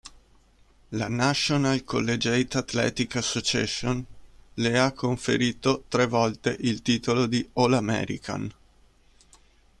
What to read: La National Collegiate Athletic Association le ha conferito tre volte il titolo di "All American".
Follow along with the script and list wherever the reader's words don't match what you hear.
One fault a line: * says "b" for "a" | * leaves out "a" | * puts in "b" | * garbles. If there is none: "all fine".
all fine